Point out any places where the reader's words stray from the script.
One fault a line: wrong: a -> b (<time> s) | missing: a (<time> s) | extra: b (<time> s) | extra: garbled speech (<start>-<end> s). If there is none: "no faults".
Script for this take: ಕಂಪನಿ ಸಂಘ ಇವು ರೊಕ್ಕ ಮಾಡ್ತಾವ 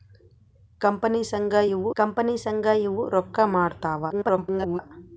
extra: ಕಂಪನಿ ಸಂಘ ಇವು (2.0 s)
extra: garbled speech (4.1-4.8 s)